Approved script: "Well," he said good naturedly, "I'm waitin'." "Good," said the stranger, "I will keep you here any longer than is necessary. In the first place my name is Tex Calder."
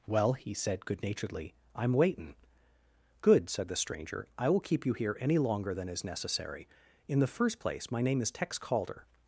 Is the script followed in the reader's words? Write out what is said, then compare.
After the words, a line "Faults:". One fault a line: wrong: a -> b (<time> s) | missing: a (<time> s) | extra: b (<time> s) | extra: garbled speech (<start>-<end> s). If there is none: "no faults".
"Well," he said good naturedly, "I'm waitin'." "Good," said the stranger, "I will keep you here any longer than is necessary. In the first place my name is Tex Calder."
Faults:
no faults